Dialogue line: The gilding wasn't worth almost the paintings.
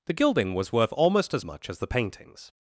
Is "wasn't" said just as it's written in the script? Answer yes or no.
no